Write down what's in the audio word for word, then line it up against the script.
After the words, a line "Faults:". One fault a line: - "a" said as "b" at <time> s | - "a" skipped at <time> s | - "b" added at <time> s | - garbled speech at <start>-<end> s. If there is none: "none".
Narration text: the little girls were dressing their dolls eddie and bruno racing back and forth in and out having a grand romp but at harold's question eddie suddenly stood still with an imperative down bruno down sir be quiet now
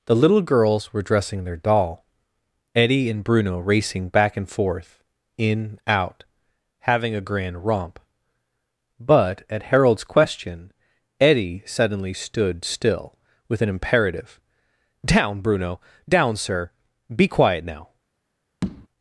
the little girls were dressing their doll eddie and bruno racing back and forth in out having a grand romp but at harold's question eddie suddenly stood still with an imperative down bruno down sir be quiet now
Faults:
- "dolls" said as "doll" at 1.6 s
- "and" skipped at 5.8 s